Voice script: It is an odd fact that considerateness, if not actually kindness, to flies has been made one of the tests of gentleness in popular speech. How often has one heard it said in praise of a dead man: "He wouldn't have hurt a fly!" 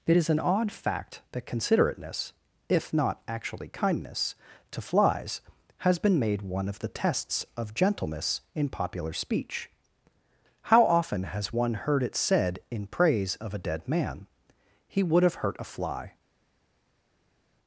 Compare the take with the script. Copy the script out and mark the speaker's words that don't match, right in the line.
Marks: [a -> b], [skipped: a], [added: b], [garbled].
It is an odd fact that considerateness, if not actually kindness, to flies has been made one of the tests of gentleness in popular speech. How often has one heard it said in praise of a dead man: "He [wouldn't -> would] have hurt a fly!"